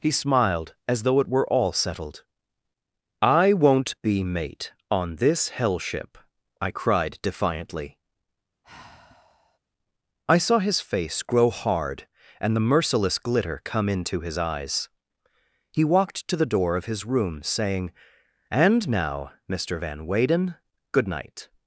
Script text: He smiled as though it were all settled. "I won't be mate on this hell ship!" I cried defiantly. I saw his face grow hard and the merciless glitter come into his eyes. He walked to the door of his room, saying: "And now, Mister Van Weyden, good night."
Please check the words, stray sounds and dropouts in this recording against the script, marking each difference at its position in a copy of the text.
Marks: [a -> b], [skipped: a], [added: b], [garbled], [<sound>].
He smiled as though it were all settled. "I won't be mate on this hell ship!" I cried defiantly. [sigh] I saw his face grow hard and the merciless glitter come into his eyes. He walked to the door of his room, saying: "And now, Mister Van Weyden, good night."